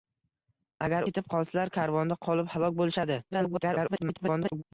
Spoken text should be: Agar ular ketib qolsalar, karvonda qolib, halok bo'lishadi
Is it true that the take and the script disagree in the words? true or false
true